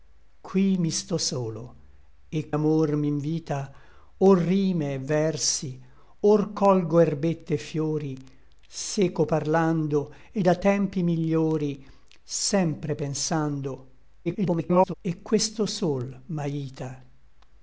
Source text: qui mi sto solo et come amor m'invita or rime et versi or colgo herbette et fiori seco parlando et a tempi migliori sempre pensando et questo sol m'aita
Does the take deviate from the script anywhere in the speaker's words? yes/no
yes